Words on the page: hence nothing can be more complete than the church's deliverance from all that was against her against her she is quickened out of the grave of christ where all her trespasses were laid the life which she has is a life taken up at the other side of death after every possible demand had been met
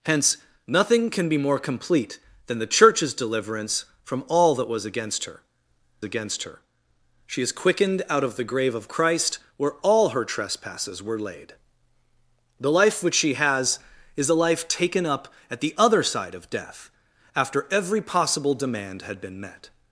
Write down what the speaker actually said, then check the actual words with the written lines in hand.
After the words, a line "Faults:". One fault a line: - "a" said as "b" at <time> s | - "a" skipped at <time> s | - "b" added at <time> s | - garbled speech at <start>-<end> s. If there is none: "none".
hence nothing can be more complete than the church's deliverance from all that was against her against her she is quickened out of the grave of christ where all her trespasses were laid the life which she has is a life taken up at the other side of death after every possible demand had been met
Faults:
none